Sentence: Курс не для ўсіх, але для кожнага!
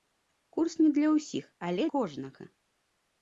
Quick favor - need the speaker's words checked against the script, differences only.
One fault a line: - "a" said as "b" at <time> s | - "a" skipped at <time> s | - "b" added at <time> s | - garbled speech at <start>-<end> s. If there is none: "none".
- "для" skipped at 1.9 s